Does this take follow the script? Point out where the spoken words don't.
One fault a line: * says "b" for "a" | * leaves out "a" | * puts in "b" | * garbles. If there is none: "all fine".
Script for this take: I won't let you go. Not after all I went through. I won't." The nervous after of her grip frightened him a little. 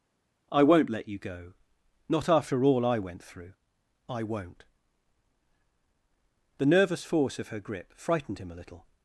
* says "force" for "after"